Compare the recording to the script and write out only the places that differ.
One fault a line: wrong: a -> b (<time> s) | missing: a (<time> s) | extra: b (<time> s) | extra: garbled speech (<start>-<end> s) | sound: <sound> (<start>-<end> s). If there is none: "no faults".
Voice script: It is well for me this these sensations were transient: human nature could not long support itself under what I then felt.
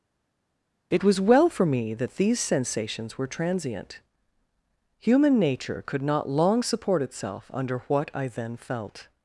wrong: is -> was (1.0 s)
wrong: this -> that (1.9 s)